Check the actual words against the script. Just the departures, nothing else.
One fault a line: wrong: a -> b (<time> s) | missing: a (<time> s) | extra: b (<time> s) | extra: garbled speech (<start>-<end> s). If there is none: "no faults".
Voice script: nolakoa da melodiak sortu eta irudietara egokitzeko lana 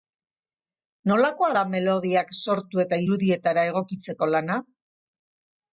no faults